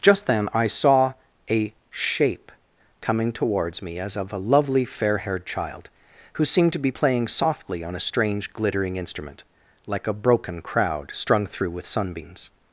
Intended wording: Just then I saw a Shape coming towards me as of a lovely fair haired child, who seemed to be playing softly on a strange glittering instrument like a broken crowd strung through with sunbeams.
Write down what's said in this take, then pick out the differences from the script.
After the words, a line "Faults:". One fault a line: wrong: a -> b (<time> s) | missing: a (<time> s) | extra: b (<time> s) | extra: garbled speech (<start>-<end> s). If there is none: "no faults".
Just then I saw a Shape coming towards me as of a lovely fair haired child, who seemed to be playing softly on a strange glittering instrument like a broken crowd strung through with sunbeams.
Faults:
no faults